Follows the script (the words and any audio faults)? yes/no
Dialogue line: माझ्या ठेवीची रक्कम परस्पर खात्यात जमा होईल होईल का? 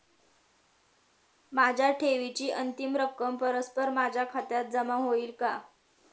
no